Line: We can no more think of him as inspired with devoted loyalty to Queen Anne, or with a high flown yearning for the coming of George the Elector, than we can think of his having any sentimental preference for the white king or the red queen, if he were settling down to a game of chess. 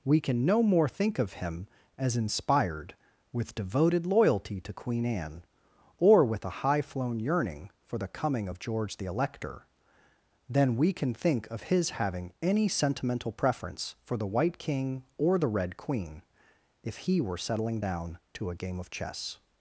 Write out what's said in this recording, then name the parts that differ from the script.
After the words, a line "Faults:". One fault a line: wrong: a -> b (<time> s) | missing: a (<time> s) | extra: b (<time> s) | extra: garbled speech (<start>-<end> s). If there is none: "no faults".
We can no more think of him as inspired with devoted loyalty to Queen Anne, or with a high flown yearning for the coming of George the Elector, than we can think of his having any sentimental preference for the white king or the red queen, if he were settling down to a game of chess.
Faults:
no faults